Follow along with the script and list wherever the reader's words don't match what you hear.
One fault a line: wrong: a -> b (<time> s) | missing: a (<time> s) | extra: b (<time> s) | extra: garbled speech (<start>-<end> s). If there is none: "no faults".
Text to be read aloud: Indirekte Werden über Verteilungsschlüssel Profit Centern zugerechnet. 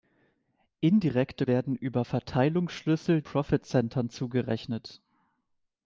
no faults